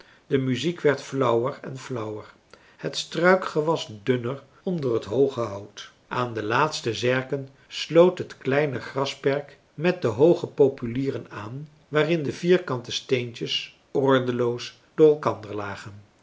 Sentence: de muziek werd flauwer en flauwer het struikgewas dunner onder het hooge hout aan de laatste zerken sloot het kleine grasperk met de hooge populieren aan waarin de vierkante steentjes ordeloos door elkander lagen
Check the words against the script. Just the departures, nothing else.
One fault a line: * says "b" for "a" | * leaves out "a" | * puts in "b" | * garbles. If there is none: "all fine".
all fine